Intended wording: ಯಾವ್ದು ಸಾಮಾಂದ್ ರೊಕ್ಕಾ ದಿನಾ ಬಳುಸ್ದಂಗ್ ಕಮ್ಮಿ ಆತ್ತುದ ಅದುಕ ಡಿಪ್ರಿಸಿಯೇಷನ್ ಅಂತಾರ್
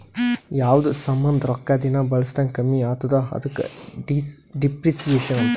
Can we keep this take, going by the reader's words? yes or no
yes